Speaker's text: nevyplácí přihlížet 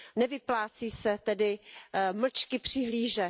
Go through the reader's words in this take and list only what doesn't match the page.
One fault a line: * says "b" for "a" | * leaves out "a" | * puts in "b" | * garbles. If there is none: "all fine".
* puts in "se tedy mlčky"